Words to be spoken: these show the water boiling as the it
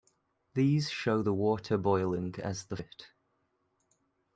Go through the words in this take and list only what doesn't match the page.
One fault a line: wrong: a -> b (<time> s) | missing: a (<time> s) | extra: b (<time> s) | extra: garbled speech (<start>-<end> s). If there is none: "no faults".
no faults